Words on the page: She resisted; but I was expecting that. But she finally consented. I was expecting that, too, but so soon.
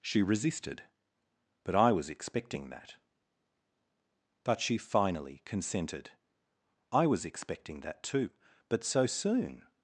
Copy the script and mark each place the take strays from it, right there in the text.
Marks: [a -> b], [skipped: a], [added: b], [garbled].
She resisted; but I was expecting that. But she finally consented. I was expecting that, too, but so soon.